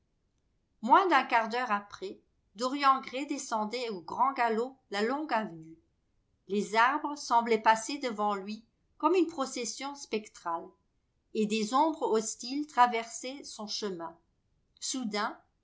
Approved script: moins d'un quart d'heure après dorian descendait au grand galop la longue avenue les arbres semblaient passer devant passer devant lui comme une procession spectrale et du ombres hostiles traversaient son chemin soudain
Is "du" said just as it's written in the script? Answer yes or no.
no